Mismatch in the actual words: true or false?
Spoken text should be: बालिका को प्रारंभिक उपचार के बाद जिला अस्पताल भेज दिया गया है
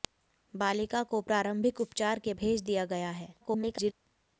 true